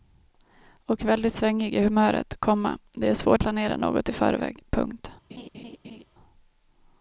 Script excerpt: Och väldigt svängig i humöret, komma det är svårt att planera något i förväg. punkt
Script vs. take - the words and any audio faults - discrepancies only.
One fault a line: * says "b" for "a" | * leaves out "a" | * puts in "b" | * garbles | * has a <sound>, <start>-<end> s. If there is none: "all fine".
* leaves out "att"
* has a laugh, 5.3-6.0 s